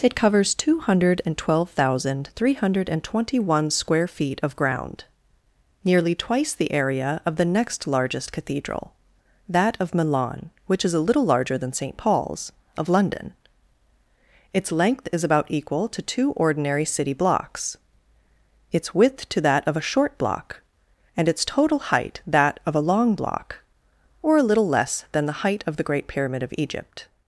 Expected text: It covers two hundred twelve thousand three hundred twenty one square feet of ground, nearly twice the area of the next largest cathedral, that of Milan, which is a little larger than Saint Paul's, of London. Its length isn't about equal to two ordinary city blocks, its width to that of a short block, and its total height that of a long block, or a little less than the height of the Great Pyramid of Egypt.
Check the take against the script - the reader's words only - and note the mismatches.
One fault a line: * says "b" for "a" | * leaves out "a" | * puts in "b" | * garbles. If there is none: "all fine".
* says "is" for "isn't"